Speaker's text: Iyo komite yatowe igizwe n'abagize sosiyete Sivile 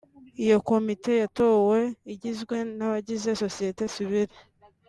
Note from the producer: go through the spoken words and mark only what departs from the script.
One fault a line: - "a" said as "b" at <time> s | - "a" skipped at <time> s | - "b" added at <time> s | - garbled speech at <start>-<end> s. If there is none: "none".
none